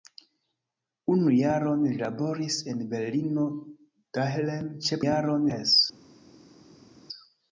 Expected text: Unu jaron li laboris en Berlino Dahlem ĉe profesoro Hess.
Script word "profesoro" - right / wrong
wrong